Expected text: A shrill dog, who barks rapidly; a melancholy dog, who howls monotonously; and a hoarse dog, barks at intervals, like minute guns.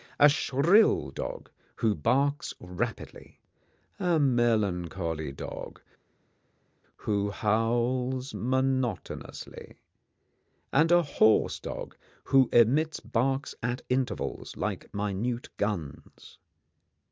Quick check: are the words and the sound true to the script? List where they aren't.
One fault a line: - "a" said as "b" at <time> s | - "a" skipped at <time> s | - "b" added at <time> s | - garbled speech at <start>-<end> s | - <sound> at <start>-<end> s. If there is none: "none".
- "who emits" added at 12.3 s